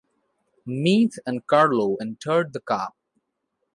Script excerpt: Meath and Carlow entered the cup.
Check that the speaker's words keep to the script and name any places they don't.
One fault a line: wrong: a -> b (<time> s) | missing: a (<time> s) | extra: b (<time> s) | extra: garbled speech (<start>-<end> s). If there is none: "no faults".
no faults